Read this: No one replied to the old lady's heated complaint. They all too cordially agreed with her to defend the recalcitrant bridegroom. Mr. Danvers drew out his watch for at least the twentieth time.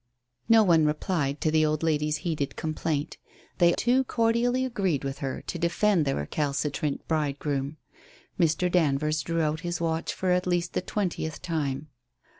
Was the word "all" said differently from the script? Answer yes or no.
yes